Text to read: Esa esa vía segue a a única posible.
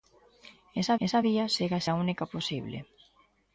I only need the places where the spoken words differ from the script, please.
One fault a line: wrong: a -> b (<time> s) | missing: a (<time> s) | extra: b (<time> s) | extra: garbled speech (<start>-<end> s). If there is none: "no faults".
no faults